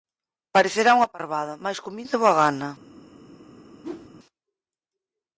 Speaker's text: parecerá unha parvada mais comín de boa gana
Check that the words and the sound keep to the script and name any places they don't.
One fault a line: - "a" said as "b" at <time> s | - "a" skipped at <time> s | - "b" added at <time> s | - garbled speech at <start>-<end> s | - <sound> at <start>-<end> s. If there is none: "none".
- whoosh at 3.8-4.1 s